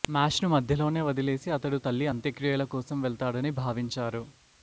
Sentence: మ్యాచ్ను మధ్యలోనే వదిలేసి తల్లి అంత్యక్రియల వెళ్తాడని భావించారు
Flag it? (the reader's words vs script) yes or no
yes